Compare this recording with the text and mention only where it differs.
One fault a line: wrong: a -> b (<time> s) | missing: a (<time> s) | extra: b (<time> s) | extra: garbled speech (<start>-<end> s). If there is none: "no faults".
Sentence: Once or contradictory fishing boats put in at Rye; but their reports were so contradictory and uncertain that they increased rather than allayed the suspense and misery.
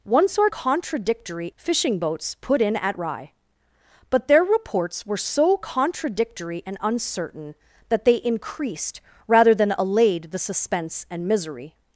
no faults